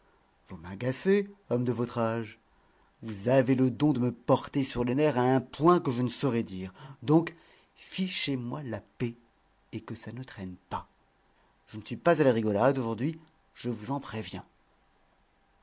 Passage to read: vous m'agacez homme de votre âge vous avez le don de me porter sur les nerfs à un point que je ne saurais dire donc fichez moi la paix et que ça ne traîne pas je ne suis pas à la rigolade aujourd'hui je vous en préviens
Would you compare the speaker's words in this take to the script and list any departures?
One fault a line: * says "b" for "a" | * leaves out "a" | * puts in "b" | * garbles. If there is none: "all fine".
all fine